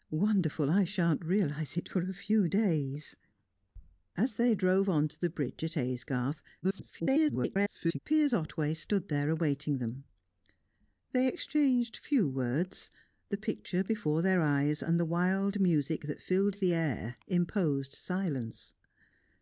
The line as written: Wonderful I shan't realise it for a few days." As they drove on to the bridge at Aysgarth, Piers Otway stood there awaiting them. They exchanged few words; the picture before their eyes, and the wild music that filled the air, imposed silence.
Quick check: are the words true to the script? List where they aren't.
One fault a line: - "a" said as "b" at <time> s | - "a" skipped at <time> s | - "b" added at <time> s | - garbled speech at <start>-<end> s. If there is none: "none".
- garbled speech at 6.6-8.0 s